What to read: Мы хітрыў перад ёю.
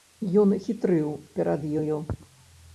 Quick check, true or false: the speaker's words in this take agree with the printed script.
false